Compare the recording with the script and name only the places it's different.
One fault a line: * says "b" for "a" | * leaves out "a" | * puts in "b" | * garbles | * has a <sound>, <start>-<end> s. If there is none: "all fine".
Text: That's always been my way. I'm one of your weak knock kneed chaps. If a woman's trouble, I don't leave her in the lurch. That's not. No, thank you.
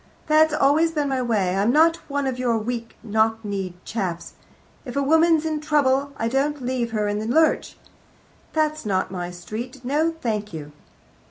* puts in "not"
* puts in "in"
* puts in "my street"